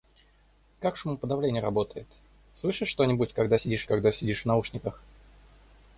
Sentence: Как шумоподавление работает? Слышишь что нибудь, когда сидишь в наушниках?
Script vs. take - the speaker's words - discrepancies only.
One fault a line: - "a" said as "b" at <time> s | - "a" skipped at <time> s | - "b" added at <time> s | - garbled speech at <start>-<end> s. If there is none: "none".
- "когда сидишь" added at 3.8 s